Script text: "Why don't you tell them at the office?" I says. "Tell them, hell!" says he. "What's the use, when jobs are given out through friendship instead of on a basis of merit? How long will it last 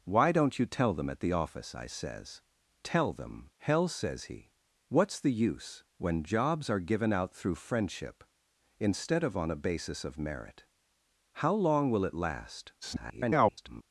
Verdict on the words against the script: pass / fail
fail